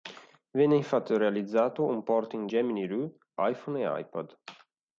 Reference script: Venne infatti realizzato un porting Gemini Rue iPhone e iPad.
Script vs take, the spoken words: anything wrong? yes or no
no